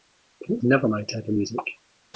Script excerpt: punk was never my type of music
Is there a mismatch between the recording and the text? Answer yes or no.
yes